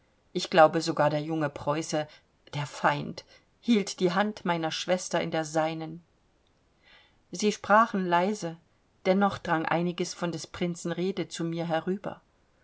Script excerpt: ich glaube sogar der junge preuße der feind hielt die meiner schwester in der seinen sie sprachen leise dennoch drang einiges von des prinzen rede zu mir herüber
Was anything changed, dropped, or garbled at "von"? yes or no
no